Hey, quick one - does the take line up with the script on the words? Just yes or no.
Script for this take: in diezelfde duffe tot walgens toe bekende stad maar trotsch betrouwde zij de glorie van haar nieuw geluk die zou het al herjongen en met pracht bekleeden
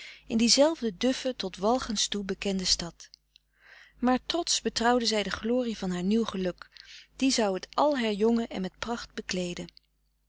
yes